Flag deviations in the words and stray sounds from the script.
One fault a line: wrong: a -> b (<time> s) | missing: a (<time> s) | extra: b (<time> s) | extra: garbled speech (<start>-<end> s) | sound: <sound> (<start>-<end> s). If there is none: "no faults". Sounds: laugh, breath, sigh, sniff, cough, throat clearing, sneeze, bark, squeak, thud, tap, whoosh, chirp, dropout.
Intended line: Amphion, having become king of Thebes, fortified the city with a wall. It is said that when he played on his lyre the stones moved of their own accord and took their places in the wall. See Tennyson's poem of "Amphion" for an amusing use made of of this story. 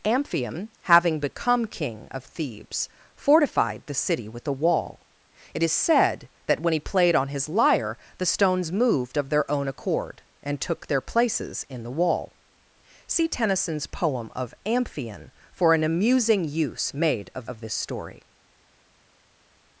no faults